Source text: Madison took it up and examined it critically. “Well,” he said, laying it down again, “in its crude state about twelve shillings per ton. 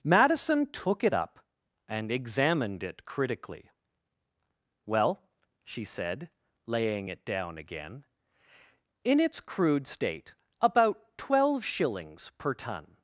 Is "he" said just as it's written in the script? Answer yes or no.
no